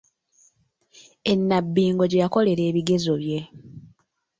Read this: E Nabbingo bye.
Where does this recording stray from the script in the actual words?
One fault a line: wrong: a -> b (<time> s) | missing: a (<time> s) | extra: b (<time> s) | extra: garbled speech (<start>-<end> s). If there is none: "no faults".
extra: gye yakolera ebigezo (2.1 s)